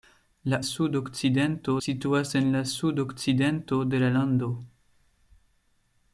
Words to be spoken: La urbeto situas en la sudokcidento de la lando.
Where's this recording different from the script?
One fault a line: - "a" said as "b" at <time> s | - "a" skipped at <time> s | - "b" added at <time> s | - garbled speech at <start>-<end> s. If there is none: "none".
- "urbeto" said as "sudokcidento" at 0.7 s